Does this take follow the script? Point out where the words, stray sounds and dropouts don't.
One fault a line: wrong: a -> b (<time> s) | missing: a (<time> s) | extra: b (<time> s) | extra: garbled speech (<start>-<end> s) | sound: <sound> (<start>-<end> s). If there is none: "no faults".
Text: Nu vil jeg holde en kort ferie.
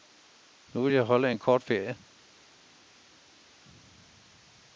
no faults